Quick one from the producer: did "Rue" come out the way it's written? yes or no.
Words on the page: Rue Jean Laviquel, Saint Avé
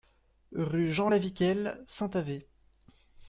yes